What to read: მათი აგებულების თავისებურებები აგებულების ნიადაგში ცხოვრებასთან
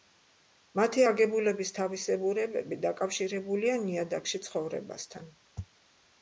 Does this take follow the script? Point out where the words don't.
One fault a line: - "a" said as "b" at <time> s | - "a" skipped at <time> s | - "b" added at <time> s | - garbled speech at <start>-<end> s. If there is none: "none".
- "აგებულების" said as "დაკავშირებულია" at 2.9 s